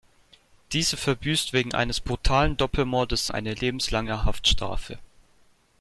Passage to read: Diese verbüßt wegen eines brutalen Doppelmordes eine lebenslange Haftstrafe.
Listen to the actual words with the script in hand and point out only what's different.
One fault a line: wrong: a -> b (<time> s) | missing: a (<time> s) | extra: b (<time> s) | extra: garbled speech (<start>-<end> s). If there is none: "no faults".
no faults